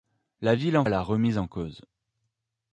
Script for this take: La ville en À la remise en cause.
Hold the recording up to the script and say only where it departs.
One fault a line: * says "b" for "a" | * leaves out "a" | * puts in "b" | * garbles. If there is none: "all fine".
all fine